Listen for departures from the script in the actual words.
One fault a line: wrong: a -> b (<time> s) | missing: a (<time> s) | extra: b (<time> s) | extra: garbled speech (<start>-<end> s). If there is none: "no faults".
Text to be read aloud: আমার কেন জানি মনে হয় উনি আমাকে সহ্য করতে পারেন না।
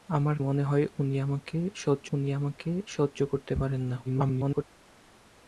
wrong: কেন জানি মনে হয় -> মনে হয় উনি আমাকে সহ্য (0.4 s)
extra: garbled speech (4.0-4.6 s)